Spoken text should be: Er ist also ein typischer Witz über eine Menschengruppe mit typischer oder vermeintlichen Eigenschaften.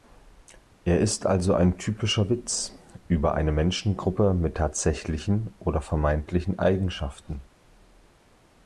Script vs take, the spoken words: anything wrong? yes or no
yes